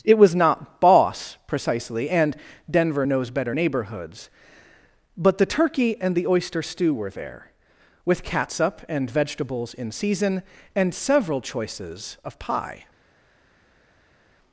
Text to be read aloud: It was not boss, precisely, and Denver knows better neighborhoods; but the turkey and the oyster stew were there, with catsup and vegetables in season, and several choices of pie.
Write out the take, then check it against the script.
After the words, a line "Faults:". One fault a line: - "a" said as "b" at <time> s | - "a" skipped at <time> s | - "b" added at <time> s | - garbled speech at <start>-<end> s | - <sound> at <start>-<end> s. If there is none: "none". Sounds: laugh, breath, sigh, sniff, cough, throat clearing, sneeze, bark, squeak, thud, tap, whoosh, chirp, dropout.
It was not boss, precisely, and Denver knows better neighborhoods; but the turkey and the oyster stew were there, with catsup and vegetables in season, and several choices of pie.
Faults:
none